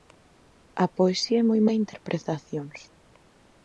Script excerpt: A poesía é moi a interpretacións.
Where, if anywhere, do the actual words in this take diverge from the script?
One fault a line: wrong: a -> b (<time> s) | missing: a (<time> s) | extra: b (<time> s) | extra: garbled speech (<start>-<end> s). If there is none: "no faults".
no faults